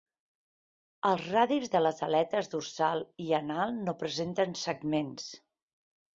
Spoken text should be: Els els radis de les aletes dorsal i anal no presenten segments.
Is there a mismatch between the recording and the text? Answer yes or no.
yes